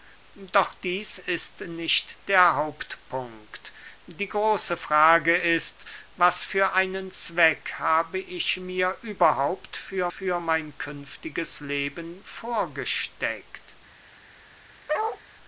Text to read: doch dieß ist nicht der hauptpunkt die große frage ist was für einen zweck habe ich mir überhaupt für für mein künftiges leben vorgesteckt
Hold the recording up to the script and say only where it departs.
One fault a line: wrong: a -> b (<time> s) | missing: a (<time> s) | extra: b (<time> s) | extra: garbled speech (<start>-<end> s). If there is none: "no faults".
no faults